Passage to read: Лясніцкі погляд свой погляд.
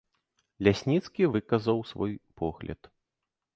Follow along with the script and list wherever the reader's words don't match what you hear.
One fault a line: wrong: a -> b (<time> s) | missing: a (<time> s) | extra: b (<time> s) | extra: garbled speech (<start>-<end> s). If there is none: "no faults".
wrong: погляд -> выказаў (1.3 s)